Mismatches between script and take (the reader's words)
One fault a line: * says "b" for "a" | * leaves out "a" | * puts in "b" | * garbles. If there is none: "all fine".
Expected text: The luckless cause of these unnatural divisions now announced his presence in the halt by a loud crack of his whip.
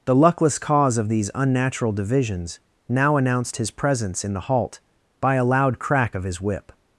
all fine